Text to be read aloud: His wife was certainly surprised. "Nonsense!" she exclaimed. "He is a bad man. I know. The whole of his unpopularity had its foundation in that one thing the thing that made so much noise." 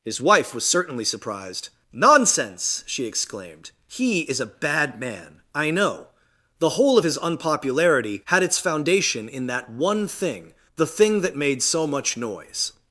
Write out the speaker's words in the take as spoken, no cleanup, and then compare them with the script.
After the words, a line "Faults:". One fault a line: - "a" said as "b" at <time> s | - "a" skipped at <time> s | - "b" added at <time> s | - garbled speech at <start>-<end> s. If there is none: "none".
His wife was certainly surprised. "Nonsense!" she exclaimed. "He is a bad man. I know. The whole of his unpopularity had its foundation in that one thing the thing that made so much noise."
Faults:
none